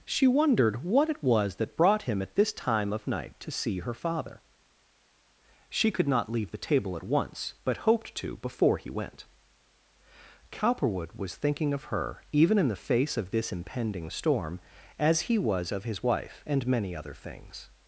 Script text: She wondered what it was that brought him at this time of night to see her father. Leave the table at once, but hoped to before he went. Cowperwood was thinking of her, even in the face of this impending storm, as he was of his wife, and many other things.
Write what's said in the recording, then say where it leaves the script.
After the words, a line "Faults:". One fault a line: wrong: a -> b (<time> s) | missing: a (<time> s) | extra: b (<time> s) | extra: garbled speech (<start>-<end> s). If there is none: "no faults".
She wondered what it was that brought him at this time of night to see her father. She could not leave the table at once, but hoped to before he went. Cowperwood was thinking of her, even in the face of this impending storm, as he was of his wife, and many other things.
Faults:
extra: She could not (5.7 s)